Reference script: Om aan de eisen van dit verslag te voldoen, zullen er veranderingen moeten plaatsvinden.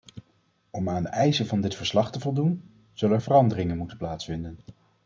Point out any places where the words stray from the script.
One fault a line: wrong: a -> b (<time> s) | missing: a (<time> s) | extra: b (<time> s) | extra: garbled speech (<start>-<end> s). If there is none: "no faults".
no faults